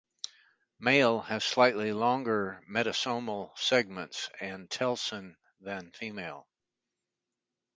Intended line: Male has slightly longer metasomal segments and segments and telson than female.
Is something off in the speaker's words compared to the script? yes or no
yes